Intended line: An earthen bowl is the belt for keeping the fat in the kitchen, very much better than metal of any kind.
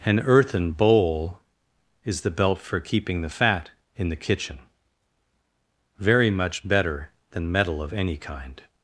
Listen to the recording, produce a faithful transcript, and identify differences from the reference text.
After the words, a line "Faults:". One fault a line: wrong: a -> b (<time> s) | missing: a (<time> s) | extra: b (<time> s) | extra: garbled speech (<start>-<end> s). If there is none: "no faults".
An earthen bowl is the belt for keeping the fat in the kitchen, very much better than metal of any kind.
Faults:
no faults